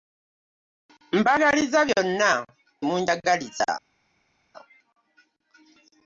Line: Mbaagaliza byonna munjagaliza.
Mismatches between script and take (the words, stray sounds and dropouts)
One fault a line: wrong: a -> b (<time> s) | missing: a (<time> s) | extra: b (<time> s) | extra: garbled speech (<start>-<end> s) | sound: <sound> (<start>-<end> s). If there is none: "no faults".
no faults